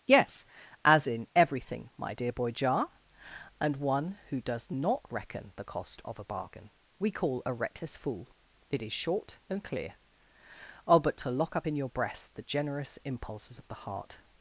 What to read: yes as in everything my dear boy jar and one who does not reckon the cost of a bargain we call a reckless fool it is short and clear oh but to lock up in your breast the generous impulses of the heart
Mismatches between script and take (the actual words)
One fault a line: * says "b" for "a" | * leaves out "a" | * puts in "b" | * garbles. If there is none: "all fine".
all fine